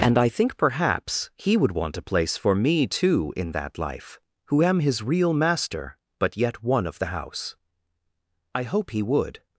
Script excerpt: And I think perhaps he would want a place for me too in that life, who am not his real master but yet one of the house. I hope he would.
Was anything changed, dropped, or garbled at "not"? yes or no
yes